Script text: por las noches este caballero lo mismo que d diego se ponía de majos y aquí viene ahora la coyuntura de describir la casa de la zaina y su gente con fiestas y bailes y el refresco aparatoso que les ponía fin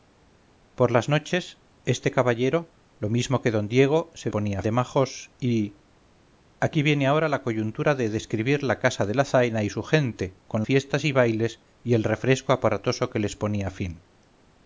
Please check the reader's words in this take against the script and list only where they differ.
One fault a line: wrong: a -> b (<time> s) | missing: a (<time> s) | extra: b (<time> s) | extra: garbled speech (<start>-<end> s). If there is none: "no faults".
no faults